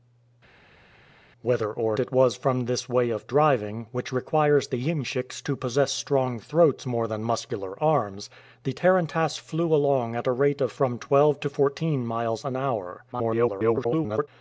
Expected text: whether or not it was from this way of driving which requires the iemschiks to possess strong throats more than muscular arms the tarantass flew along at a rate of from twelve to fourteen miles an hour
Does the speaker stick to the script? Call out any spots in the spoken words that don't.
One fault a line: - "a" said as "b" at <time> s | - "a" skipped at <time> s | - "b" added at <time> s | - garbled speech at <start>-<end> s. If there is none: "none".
- "not" skipped at 2.0 s
- garbled speech at 13.1-14.3 s